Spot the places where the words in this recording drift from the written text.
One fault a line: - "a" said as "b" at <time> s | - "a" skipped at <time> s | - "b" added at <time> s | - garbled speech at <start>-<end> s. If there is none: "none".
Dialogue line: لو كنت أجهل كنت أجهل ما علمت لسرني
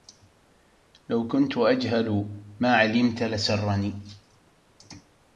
- "كنت أجهل" skipped at 2.3 s